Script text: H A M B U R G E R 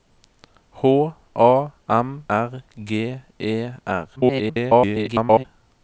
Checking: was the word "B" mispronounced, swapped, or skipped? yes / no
yes